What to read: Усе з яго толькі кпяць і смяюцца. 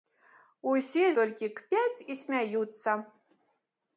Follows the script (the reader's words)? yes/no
no